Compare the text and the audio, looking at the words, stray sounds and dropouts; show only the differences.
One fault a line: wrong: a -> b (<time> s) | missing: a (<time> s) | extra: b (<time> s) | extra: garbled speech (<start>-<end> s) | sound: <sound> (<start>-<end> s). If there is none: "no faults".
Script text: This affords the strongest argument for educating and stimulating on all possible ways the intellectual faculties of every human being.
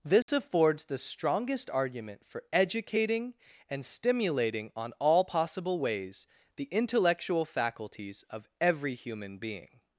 sound: dropout (0.2-0.3 s)